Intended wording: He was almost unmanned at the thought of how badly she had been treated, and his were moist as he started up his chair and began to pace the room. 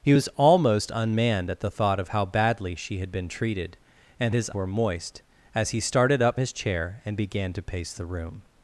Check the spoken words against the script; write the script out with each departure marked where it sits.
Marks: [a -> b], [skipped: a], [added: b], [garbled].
He was almost unmanned at the thought of how badly she had been treated, and his were moist as he started up his chair and began to pace the room.